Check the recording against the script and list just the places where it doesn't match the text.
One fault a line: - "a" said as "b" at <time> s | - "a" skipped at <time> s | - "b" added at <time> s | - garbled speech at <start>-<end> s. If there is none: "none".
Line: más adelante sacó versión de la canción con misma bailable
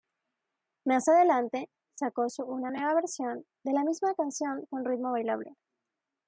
- "su una nueva" added at 2.3 s
- "misma" added at 3.8 s
- "misma" said as "ritmo" at 4.8 s